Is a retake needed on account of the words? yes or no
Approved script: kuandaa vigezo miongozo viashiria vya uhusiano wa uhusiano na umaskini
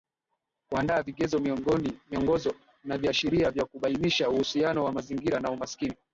yes